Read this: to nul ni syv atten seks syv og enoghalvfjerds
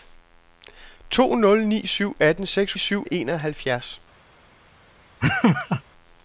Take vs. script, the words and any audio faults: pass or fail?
fail